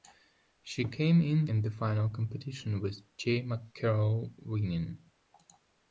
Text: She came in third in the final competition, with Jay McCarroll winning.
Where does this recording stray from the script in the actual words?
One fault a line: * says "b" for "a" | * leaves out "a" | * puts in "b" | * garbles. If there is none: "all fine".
* leaves out "third"